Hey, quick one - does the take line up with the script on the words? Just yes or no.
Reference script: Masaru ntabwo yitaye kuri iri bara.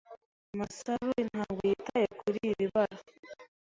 yes